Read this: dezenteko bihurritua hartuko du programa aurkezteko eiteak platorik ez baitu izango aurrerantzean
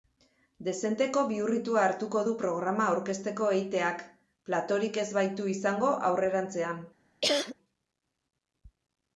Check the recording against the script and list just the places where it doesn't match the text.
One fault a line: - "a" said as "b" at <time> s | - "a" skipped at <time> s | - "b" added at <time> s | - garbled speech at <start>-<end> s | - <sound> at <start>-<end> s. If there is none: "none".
- cough at 7.2-7.6 s